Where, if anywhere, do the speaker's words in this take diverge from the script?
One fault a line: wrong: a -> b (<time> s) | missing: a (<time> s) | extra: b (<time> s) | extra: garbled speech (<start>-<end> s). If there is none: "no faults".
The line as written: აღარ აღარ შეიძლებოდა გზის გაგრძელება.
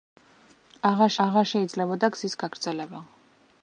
no faults